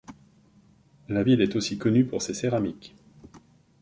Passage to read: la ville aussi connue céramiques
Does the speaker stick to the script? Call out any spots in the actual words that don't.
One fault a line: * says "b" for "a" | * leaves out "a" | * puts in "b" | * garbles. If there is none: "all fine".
* puts in "est"
* puts in "pour ses"